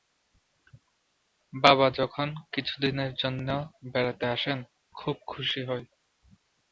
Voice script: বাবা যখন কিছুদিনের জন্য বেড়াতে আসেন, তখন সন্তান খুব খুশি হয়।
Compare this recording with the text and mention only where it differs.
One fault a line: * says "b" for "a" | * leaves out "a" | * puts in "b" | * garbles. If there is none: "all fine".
* leaves out "তখন সন্তান"